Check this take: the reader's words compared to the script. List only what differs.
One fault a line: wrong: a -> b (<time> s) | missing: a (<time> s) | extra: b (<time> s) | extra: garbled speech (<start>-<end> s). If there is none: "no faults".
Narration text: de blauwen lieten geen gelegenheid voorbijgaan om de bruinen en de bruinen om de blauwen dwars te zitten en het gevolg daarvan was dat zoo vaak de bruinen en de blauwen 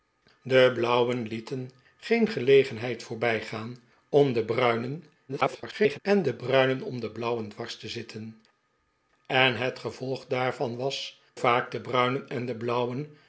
extra: garbled speech (5.3-6.0 s)
missing: dat zoo (11.2 s)